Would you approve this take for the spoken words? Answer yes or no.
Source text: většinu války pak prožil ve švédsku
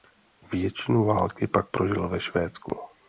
yes